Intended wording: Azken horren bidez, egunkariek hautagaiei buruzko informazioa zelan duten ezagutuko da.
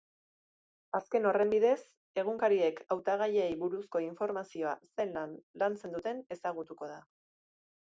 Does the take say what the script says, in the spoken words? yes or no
no